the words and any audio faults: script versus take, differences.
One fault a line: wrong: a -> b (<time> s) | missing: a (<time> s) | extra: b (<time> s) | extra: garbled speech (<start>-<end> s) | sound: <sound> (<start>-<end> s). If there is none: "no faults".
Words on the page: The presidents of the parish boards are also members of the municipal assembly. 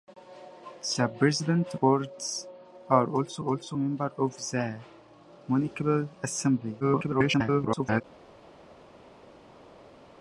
missing: of the parish (1.8 s)
extra: also (3.4 s)
extra: garbled speech (6.8-8.0 s)